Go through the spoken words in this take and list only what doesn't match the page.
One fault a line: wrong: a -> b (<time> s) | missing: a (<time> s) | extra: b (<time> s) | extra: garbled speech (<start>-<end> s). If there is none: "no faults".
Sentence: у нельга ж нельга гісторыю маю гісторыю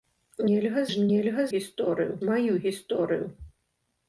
no faults